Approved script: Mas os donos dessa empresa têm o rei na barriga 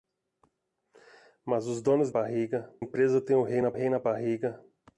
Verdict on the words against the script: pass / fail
fail